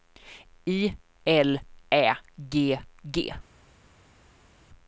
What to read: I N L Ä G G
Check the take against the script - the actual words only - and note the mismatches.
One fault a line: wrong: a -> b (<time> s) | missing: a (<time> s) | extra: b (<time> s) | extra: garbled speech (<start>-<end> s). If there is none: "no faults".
missing: N (0.9 s)